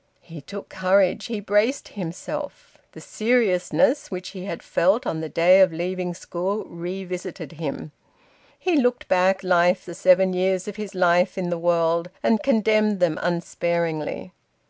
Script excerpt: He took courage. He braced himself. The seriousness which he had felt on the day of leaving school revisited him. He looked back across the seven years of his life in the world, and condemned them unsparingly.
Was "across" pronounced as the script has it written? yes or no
no